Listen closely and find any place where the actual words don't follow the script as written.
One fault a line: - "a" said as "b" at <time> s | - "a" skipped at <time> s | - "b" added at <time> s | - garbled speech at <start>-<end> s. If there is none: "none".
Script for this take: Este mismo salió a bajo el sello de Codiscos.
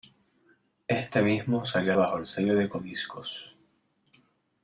none